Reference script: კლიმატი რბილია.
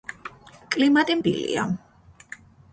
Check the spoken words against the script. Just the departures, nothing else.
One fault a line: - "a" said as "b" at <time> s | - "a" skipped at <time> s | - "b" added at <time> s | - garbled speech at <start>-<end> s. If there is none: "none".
none